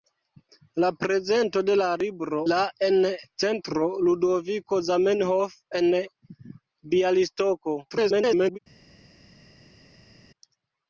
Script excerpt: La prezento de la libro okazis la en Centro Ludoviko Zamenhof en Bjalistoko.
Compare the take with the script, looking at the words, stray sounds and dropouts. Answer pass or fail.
fail